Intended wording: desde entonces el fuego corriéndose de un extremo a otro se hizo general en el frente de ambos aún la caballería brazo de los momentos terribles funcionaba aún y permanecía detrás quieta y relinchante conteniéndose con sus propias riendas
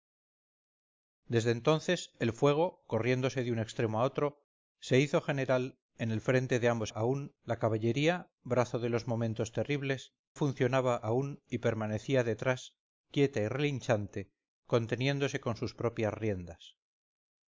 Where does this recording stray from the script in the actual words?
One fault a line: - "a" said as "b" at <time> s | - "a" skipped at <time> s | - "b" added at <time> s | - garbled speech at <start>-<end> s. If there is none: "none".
none